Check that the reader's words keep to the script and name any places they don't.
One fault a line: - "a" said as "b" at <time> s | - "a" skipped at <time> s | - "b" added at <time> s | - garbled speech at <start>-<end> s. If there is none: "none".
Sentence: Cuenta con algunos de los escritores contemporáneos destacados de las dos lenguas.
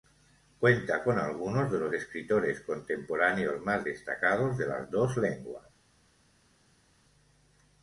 - "más" added at 3.6 s